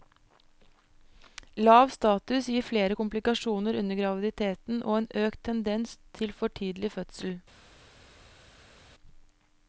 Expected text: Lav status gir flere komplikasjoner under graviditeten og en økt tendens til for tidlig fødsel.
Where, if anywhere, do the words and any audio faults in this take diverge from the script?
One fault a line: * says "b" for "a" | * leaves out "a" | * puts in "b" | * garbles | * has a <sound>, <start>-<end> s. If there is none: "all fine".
all fine